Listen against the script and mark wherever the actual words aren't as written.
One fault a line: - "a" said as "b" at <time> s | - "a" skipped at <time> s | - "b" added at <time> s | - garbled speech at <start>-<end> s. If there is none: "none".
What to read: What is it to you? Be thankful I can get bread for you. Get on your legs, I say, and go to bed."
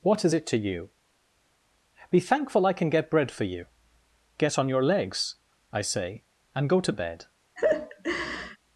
none